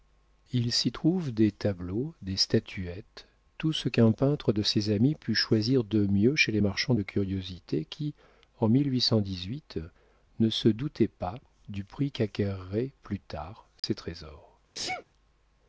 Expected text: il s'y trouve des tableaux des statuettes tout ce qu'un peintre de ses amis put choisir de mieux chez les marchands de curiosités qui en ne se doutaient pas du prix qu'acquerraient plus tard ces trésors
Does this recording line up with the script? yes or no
yes